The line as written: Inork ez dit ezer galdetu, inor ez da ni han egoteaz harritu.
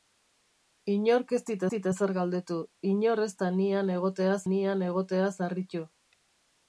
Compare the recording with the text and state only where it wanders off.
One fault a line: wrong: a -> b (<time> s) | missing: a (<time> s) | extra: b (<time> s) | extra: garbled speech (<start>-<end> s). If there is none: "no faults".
extra: dit (1.7 s)
extra: ni han egoteaz (4.5 s)